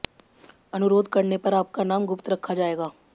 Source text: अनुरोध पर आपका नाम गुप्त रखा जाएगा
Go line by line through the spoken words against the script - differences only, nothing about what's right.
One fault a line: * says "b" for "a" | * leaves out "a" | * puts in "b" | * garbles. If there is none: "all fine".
* puts in "करने"